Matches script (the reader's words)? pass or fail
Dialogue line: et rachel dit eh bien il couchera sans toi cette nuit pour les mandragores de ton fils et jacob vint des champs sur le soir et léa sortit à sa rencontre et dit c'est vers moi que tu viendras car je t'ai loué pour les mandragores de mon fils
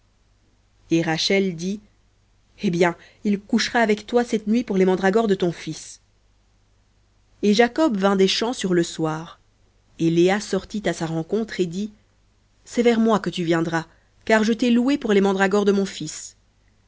fail